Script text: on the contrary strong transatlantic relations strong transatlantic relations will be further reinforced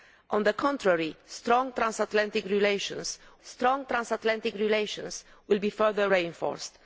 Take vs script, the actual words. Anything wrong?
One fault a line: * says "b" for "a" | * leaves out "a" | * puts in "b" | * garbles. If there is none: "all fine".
all fine